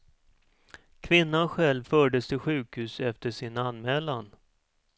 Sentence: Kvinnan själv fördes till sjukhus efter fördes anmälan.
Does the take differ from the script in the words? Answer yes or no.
yes